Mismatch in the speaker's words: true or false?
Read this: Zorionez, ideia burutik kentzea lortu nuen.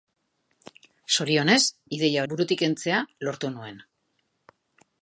false